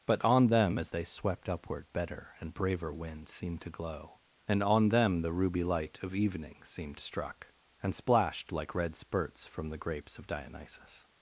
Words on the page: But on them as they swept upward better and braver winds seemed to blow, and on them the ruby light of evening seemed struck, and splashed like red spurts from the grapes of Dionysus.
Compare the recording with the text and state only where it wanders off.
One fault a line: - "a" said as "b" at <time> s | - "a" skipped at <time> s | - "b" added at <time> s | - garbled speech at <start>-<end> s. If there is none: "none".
- "blow" said as "glow" at 3.7 s